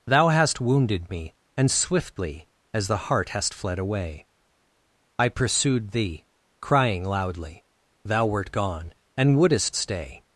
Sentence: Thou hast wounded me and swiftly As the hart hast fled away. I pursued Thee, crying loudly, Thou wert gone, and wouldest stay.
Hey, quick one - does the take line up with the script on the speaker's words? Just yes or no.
yes